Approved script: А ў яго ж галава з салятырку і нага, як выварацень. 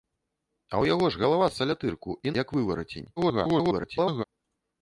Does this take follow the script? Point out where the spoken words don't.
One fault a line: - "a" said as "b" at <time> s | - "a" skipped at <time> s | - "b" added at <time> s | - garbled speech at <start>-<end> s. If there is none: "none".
- "нага" skipped at 2.3 s
- garbled speech at 3.2-4.2 s